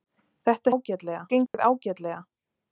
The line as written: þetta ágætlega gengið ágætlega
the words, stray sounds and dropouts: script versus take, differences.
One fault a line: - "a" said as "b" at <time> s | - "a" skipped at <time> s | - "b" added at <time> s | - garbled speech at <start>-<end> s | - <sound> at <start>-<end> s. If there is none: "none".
- dropout at 1.5-1.5 s